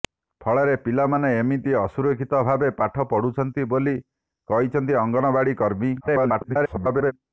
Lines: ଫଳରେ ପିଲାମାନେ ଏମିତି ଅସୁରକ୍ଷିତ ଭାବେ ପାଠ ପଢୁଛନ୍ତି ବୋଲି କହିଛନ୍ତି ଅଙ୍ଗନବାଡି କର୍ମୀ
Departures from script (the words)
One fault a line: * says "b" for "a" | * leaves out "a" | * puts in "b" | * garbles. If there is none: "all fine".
* garbles